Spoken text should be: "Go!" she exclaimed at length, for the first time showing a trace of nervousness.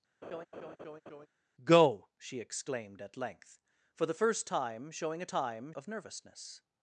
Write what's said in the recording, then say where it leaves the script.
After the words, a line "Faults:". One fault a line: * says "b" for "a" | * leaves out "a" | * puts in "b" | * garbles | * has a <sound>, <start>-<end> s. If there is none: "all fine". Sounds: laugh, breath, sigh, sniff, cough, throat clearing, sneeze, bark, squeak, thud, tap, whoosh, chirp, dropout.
"Go!" she exclaimed at length, for the first time showing a time of nervousness.
Faults:
* has a laugh, 0.2-1.3 s
* says "time" for "trace"